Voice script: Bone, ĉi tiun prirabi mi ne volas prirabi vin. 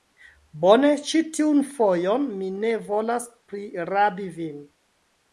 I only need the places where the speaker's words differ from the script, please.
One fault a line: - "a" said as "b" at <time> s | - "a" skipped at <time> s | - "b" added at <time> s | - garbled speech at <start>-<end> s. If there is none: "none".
- "prirabi" said as "fojon" at 1.7 s